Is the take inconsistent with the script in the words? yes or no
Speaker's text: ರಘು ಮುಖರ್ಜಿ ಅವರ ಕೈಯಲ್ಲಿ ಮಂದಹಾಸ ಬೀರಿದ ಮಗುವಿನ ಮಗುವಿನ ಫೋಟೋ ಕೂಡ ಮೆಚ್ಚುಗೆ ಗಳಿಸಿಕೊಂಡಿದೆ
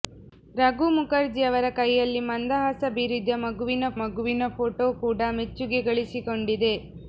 no